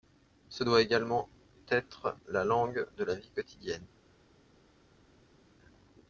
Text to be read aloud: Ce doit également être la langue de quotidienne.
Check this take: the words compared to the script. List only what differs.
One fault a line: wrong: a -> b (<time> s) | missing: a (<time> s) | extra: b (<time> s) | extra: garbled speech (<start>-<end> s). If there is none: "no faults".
extra: la vie (3.0 s)